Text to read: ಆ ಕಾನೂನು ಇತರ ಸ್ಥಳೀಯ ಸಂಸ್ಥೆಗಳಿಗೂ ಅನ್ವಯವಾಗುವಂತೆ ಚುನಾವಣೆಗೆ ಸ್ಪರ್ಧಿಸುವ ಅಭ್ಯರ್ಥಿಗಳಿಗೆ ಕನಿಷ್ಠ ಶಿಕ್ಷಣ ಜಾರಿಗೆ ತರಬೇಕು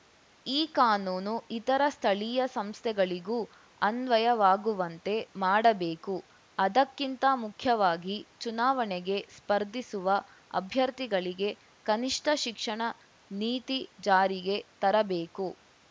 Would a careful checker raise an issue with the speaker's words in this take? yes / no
yes